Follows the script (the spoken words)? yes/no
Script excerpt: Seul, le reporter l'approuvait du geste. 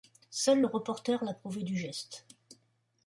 yes